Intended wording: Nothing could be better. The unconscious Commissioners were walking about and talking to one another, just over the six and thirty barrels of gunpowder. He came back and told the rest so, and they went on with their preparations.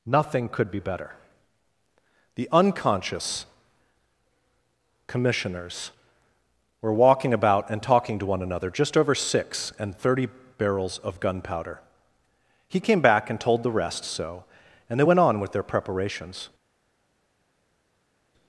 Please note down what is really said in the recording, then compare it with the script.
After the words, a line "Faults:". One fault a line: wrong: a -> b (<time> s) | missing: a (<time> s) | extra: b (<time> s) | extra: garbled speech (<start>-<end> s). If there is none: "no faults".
Nothing could be better. The unconscious Commissioners were walking about and talking to one another, just over six and thirty barrels of gunpowder. He came back and told the rest so, and they went on with their preparations.
Faults:
missing: the (9.1 s)